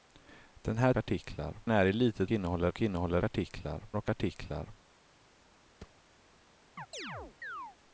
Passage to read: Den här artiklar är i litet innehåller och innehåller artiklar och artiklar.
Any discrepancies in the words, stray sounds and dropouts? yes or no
yes